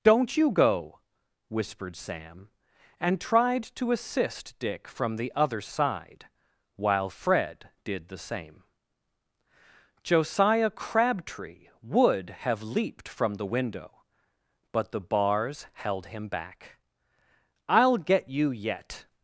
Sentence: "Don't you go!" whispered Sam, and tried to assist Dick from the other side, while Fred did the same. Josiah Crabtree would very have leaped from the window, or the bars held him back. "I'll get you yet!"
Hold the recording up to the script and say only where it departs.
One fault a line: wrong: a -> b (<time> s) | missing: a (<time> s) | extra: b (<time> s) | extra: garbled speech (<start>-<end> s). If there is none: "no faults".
missing: very (12.3 s)
wrong: or -> but (14.7 s)